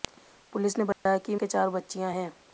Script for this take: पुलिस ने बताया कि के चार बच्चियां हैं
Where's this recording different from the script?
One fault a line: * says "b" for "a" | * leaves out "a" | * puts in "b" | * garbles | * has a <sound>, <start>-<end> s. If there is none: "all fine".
* has a dropout, 0.9-1.1 s